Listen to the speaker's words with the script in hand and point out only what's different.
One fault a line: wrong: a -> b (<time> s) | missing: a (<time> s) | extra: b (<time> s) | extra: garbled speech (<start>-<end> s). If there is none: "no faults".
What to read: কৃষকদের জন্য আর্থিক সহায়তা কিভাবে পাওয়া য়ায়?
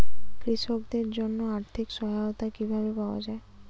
no faults